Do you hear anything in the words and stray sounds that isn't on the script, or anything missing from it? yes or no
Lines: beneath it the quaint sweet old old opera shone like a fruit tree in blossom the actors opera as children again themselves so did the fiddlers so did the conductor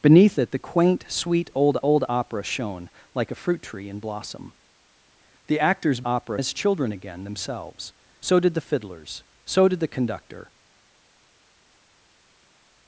no